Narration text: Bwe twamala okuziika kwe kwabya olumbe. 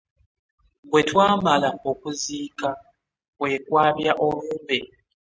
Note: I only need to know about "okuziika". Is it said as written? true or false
true